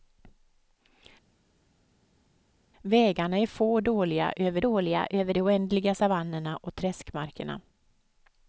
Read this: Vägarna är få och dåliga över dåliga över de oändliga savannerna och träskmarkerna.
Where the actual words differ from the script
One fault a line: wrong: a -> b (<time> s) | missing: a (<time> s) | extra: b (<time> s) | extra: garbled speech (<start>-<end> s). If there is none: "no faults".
no faults